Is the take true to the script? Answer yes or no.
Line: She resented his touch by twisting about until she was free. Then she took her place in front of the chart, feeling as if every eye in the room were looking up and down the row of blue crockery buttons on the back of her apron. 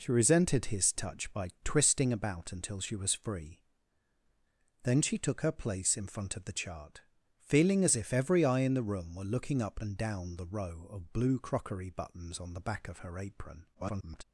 no